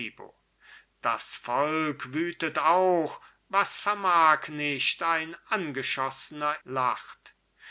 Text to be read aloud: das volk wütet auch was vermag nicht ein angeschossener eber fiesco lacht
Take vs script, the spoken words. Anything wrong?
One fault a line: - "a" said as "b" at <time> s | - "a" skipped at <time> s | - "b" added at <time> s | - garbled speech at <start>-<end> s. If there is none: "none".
- "eber fiesco" skipped at 6.5 s